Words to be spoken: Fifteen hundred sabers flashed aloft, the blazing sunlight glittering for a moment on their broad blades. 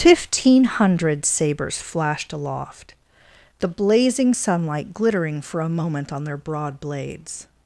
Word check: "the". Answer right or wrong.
right